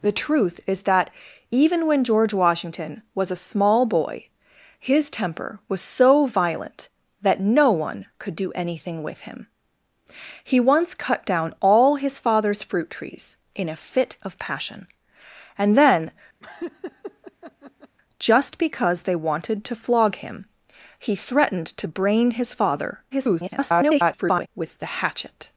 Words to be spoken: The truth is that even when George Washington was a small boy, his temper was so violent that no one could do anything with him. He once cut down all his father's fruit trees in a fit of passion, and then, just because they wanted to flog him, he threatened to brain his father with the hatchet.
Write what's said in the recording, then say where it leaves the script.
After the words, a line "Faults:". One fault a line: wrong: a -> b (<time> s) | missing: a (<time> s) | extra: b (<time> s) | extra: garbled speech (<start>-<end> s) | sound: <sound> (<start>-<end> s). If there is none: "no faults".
The truth is that even when George Washington was a small boy, his temper was so violent that no one could do anything with him. He once cut down all his father's fruit trees in a fit of passion, and then, just because they wanted to flog him, he threatened to brain his father [garbled] with the hatchet.
Faults:
sound: laugh (16.4-18.0 s)
extra: garbled speech (23.1-24.5 s)